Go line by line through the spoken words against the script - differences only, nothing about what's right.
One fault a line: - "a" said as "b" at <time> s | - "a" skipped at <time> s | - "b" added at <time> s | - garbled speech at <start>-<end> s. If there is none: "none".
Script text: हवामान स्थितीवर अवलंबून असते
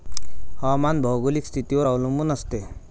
- "भौगोलिक" added at 1.0 s